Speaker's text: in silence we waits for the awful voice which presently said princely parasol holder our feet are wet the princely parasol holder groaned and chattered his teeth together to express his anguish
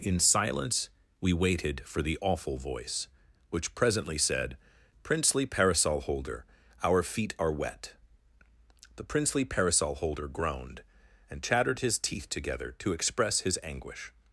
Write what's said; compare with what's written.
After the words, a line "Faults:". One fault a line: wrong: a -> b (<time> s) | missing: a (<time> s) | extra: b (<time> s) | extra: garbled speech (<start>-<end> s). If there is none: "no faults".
in silence we waited for the awful voice which presently said princely parasol holder our feet are wet the princely parasol holder groaned and chattered his teeth together to express his anguish
Faults:
wrong: waits -> waited (1.3 s)